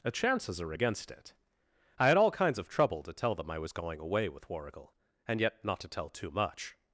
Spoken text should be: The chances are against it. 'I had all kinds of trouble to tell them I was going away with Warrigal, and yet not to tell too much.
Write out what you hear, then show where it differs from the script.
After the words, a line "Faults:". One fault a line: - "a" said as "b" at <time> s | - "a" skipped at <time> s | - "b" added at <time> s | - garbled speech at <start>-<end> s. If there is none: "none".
The chances are against it. 'I had all kinds of trouble to tell them I was going away with Warrigal, and yet not to tell too much.
Faults:
none